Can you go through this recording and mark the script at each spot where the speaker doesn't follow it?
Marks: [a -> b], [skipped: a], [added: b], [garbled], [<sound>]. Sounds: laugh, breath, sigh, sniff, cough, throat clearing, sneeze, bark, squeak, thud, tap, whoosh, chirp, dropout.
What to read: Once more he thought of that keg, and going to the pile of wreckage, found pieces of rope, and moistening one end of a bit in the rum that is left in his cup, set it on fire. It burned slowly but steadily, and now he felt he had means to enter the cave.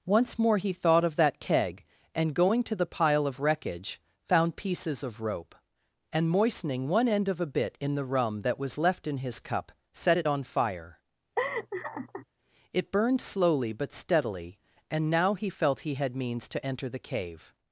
Once more he thought of that keg, and going to the pile of wreckage, found pieces of rope, and moistening one end of a bit in the rum that [is -> was] left in his cup, set it on fire. [laugh] It burned slowly but steadily, and now he felt he had means to enter the cave.